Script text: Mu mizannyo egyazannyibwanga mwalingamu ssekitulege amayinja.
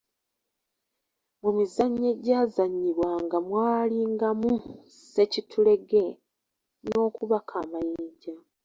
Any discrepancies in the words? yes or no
yes